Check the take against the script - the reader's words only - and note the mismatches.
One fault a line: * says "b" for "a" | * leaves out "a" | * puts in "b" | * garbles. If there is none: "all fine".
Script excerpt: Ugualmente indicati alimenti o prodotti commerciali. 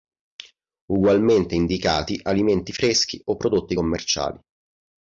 * puts in "freschi"